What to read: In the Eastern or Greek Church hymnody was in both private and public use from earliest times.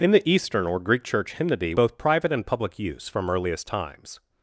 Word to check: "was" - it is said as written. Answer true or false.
false